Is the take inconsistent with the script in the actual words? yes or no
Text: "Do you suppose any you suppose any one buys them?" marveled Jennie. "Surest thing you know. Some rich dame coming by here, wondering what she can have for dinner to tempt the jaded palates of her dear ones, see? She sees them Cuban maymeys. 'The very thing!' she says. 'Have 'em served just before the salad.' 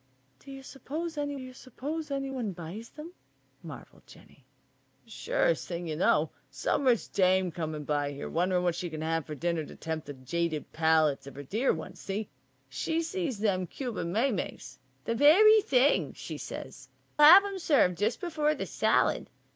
no